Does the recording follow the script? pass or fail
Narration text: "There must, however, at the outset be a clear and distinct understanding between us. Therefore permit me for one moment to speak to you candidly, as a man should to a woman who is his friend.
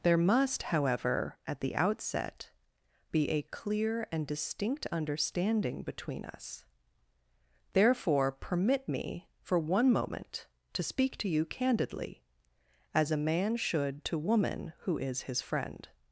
fail